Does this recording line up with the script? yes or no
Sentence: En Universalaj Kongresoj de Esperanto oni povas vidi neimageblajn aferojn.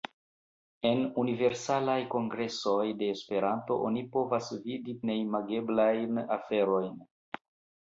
yes